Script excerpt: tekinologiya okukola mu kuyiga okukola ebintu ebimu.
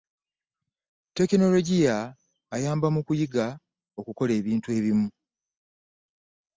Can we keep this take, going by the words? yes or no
no